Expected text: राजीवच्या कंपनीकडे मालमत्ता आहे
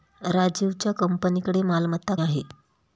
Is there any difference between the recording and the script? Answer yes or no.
no